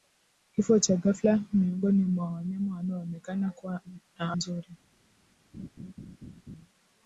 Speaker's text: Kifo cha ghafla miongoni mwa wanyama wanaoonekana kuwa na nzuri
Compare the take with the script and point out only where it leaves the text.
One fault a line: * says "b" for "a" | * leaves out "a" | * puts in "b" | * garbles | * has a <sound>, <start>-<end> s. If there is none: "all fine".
* has a laugh, 5.5-6.7 s